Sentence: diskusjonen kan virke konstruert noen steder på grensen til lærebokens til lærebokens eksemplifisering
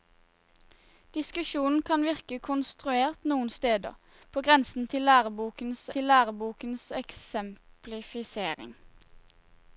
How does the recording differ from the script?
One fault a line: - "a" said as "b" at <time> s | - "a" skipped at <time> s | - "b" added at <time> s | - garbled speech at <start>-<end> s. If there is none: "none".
none